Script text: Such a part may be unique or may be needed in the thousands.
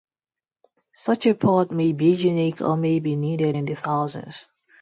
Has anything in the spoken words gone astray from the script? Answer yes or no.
no